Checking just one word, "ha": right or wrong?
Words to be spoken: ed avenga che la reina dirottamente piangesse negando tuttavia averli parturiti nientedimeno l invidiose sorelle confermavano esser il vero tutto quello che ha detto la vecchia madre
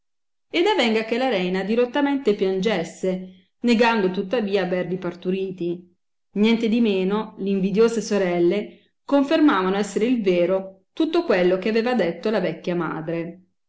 wrong